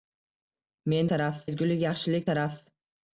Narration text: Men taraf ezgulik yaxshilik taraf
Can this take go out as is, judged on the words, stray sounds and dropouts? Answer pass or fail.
pass